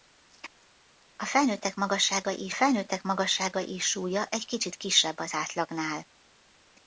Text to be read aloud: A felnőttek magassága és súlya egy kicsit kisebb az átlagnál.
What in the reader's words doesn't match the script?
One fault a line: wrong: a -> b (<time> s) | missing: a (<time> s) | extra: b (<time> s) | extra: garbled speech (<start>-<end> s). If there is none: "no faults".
extra: felnőttek magassága és (2.5 s)